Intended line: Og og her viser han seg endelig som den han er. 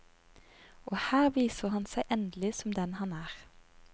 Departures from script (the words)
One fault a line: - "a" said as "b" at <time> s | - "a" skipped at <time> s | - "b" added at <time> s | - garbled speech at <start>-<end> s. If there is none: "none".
- "og" skipped at 1.0 s